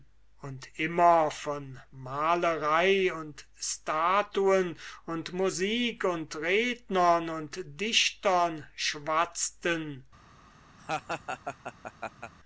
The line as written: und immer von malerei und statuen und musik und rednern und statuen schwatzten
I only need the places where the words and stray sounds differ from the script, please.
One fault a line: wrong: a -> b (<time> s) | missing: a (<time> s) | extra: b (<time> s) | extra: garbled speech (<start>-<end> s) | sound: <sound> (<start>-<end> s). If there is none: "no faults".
wrong: statuen -> dichtern (7.8 s)
sound: laugh (10.8-12.3 s)